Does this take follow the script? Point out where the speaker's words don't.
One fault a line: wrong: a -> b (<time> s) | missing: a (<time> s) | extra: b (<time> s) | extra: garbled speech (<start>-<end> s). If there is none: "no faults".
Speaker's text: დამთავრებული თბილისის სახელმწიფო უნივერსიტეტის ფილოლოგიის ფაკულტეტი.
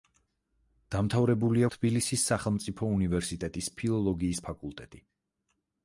no faults